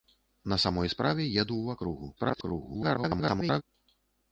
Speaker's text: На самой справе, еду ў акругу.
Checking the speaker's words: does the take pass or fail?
fail